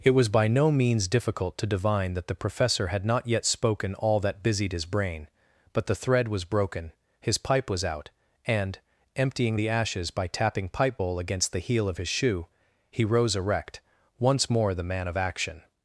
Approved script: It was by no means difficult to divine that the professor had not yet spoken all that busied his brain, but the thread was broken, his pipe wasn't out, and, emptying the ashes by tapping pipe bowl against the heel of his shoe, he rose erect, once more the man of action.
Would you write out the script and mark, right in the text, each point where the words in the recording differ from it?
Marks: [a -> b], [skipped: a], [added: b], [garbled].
It was by no means difficult to divine that the professor had not yet spoken all that busied his brain, but the thread was broken, his pipe [wasn't -> was] out, and, emptying the ashes by tapping pipe bowl against the heel of his shoe, he rose erect, once more the man of action.